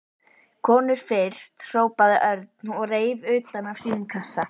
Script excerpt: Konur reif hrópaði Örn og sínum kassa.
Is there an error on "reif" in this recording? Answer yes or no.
yes